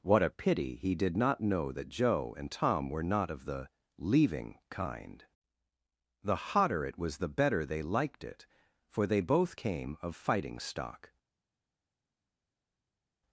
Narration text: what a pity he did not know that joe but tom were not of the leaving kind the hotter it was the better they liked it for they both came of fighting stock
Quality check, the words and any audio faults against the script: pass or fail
fail